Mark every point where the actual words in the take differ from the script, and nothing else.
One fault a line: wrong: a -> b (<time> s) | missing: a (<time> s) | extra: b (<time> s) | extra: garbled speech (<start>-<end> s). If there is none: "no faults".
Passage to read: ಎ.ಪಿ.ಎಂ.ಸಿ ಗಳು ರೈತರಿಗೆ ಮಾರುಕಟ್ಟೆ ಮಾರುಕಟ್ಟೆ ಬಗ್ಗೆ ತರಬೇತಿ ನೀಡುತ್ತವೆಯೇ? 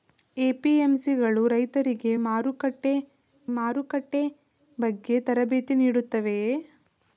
no faults